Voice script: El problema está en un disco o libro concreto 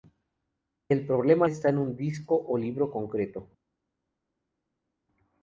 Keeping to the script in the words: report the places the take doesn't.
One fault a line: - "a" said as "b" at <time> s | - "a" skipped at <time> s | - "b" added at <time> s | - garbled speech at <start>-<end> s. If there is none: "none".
none